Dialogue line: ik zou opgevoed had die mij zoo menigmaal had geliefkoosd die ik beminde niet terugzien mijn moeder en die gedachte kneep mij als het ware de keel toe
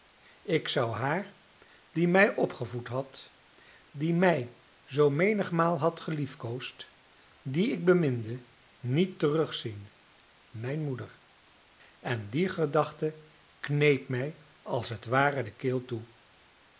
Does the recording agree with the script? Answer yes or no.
no